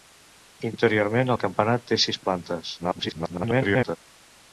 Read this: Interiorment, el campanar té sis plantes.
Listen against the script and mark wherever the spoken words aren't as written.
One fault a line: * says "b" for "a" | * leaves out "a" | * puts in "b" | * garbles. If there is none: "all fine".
* garbles